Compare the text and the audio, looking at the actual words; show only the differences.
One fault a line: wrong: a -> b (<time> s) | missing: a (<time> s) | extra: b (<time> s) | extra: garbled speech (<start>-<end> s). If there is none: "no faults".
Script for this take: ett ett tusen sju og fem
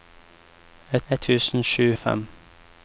no faults